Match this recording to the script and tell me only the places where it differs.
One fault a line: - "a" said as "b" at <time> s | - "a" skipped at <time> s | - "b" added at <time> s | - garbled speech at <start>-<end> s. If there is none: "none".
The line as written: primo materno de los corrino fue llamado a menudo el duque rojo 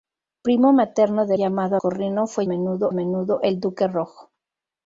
- "los" said as "llamado" at 1.3 s
- "llamado" said as "menudo" at 2.4 s